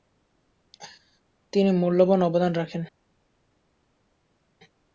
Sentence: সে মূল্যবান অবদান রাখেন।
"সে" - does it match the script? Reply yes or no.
no